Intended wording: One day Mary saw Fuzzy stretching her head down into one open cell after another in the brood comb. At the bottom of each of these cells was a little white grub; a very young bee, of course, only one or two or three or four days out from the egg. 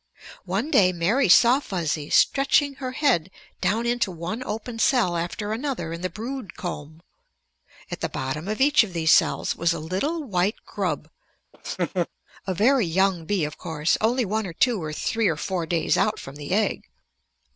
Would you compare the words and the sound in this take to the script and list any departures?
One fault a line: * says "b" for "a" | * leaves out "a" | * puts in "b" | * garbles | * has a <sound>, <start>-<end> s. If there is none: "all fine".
* has a laugh, 11.5-12.1 s